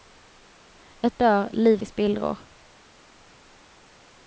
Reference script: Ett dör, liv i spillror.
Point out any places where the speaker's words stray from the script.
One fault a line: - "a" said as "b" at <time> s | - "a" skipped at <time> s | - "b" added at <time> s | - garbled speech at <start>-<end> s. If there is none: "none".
none